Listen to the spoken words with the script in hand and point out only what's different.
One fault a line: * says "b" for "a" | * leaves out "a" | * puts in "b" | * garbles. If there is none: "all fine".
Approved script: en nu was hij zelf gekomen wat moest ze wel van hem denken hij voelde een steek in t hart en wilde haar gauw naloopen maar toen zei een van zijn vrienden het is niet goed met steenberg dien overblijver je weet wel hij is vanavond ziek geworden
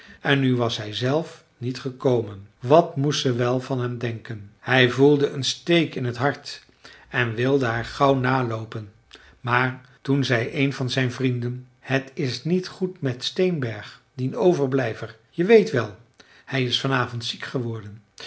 * puts in "niet"